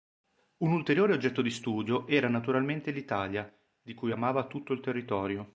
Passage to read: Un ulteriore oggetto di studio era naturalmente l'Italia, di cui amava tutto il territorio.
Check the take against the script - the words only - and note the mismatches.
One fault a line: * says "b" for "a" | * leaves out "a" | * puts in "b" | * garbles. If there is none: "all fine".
all fine